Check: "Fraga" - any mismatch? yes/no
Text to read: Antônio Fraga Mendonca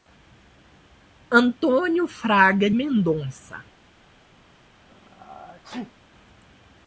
no